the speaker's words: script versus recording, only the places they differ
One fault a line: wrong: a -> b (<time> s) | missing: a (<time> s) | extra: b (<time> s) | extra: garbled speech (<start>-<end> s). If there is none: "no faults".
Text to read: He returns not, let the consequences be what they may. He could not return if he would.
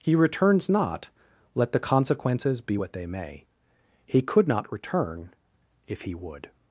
no faults